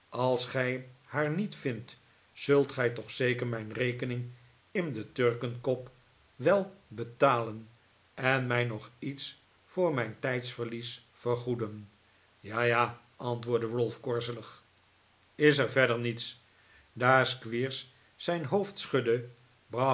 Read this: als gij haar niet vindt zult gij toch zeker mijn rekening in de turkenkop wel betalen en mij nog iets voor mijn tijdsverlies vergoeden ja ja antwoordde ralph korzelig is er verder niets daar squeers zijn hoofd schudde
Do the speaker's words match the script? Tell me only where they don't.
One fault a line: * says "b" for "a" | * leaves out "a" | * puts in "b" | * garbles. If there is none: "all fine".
all fine